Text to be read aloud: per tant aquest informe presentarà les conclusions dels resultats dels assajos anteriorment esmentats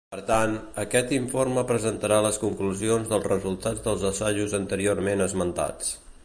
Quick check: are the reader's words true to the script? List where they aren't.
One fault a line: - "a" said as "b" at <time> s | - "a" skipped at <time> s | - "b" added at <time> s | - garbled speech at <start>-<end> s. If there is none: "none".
none